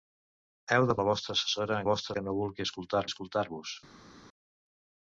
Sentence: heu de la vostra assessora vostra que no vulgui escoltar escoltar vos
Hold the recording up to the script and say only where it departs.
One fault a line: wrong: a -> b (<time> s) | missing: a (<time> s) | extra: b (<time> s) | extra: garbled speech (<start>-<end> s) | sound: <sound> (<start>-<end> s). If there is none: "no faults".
no faults